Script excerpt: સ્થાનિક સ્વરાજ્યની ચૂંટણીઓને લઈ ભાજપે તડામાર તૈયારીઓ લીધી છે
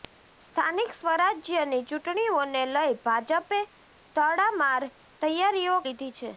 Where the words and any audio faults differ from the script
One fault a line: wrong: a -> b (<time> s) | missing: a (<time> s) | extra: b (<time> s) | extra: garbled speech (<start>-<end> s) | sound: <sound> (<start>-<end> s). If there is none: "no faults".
no faults